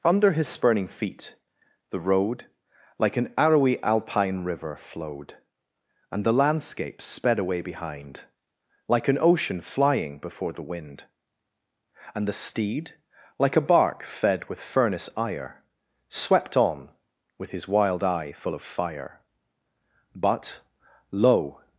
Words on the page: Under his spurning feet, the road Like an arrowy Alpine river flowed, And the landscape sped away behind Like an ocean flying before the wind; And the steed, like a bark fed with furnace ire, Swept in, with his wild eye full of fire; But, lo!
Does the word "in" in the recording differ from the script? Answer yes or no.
yes